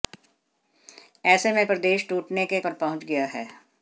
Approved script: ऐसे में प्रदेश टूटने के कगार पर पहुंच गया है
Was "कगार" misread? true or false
true